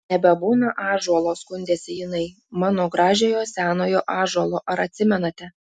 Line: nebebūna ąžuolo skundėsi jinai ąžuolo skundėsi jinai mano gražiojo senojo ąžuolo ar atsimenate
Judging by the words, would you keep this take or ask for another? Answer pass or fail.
fail